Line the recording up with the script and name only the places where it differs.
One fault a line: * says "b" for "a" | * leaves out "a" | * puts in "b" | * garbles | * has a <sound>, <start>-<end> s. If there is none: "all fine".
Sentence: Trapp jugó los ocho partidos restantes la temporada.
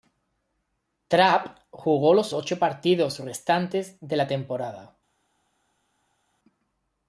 * puts in "de"